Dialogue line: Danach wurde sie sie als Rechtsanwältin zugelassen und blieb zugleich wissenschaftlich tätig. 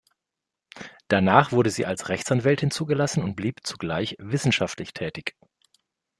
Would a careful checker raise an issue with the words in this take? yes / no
yes